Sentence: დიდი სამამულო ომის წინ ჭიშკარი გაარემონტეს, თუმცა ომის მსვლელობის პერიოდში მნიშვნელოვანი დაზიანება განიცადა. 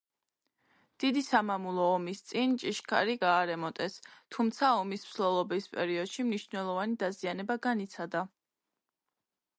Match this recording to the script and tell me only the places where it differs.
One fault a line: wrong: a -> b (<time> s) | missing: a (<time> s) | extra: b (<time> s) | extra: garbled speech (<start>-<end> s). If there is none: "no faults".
no faults